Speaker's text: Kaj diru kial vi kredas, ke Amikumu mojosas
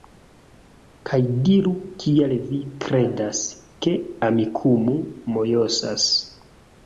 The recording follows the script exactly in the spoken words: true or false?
true